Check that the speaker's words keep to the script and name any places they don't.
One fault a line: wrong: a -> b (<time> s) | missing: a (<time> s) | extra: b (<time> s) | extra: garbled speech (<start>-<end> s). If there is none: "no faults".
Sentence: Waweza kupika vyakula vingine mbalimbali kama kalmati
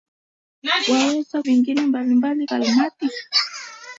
missing: kupika vyakula (1.4 s)
missing: kama (2.5 s)